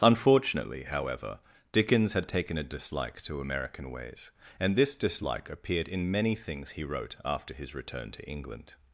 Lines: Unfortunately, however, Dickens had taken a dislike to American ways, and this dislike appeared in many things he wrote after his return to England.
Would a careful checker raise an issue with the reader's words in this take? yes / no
no